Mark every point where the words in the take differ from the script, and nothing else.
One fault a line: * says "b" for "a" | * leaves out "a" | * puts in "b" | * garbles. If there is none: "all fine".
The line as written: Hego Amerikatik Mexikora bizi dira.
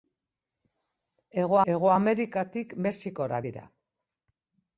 * puts in "hego"
* leaves out "bizi"